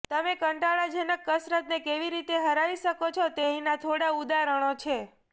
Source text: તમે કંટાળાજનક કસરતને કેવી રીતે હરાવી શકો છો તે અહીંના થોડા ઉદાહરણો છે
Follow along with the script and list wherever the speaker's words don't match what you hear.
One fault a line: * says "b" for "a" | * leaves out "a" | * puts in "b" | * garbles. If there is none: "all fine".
all fine